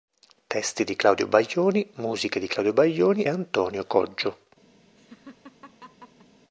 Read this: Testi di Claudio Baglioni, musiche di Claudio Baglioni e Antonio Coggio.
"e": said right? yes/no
no